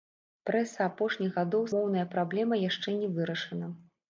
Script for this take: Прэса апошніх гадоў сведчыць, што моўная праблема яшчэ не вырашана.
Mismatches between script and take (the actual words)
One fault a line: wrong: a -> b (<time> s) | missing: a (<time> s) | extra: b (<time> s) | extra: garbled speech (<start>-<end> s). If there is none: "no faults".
missing: сведчыць што (1.6 s)